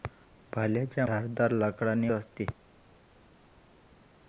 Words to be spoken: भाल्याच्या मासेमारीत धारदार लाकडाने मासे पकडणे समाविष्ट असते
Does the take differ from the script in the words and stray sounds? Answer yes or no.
yes